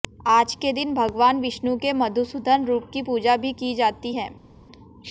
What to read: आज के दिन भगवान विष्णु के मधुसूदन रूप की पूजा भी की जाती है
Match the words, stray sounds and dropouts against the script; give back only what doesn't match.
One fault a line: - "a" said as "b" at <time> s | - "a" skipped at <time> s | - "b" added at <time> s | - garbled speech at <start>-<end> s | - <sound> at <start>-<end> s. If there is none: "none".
none